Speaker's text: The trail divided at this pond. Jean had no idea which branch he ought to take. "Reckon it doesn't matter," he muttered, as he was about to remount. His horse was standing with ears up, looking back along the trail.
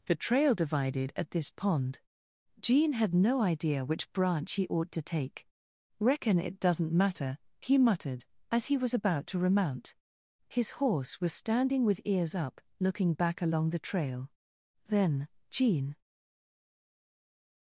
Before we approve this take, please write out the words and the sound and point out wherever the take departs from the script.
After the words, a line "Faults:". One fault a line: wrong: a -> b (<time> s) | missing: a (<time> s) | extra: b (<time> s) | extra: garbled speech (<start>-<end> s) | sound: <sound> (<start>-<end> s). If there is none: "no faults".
The trail divided at this pond. Jean had no idea which branch he ought to take. "Reckon it doesn't matter," he muttered, as he was about to remount. His horse was standing with ears up, looking back along the trail. Then Jean
Faults:
extra: Then Jean (14.9 s)